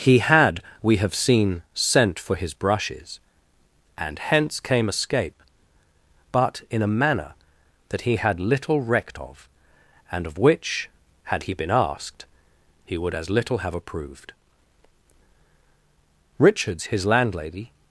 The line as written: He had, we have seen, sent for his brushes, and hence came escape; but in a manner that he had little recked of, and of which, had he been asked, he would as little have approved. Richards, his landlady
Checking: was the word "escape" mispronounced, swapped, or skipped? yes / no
no